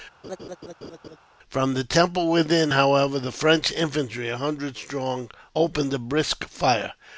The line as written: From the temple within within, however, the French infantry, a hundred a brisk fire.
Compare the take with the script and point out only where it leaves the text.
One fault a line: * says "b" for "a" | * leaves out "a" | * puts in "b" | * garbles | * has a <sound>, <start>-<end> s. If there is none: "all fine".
* has a laugh, 0.2-1.2 s
* leaves out "within"
* puts in "strong opened"